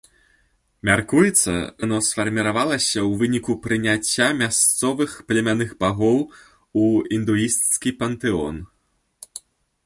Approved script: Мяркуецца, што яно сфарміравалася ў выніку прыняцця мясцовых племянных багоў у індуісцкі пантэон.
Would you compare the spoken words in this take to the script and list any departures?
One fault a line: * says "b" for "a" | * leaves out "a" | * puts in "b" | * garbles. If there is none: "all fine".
* leaves out "што"